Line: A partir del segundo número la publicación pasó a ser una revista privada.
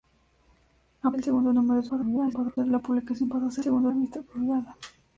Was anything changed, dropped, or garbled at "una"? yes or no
yes